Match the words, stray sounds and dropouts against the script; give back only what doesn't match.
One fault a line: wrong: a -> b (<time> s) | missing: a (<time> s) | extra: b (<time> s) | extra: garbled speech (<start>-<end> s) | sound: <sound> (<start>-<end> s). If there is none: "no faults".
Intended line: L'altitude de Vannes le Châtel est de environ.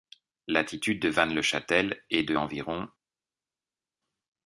no faults